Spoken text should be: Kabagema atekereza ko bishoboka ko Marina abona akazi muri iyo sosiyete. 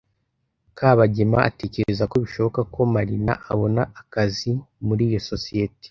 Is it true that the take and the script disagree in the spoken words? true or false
false